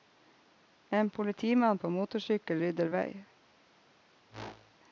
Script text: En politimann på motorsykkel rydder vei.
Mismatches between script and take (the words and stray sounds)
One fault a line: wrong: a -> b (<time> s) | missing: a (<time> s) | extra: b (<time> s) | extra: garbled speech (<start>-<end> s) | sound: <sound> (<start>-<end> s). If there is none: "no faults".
sound: whoosh (4.3-4.8 s)